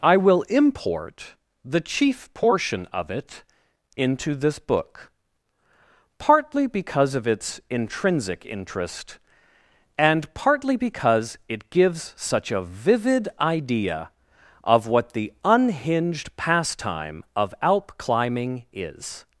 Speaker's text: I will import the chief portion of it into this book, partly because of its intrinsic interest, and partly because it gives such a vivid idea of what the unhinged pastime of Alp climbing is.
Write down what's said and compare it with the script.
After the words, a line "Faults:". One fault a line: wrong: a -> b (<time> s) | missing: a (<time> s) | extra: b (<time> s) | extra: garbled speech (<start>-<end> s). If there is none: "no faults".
I will import the chief portion of it into this book, partly because of its intrinsic interest, and partly because it gives such a vivid idea of what the unhinged pastime of Alp climbing is.
Faults:
no faults